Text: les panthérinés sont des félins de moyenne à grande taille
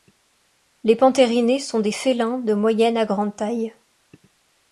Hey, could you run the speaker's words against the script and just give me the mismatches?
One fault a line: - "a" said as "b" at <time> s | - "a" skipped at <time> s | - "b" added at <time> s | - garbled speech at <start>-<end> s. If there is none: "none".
none